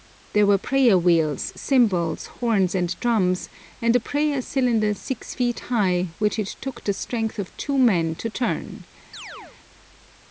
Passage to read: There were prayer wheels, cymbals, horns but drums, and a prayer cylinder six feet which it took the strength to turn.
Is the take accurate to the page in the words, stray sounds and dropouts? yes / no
no